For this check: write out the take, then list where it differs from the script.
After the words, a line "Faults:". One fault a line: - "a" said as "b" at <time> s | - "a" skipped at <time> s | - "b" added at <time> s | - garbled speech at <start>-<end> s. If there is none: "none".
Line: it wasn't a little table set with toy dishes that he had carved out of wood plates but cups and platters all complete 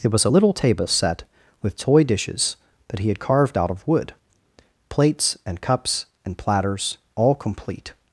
it was a little table set with toy dishes that he had carved out of wood plates and cups and platters all complete
Faults:
- "wasn't" said as "was" at 0.1 s
- "but" said as "and" at 5.4 s